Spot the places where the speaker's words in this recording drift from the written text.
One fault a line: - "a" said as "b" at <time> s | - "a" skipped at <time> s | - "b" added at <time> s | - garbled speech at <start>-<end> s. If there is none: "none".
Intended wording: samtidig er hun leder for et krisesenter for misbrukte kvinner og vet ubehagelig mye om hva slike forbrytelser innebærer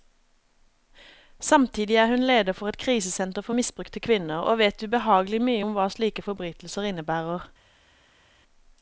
none